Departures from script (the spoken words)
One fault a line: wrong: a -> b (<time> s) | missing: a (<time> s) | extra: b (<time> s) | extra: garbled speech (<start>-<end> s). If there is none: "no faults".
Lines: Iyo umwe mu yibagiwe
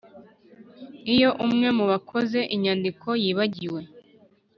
extra: bakoze inyandiko (1.9 s)